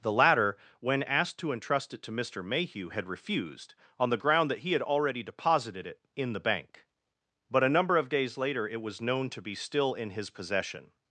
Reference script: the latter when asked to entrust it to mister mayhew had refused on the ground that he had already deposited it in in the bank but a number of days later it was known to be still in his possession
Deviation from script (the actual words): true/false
true